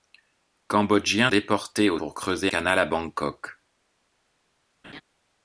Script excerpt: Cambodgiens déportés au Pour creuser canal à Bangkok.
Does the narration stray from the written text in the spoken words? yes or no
no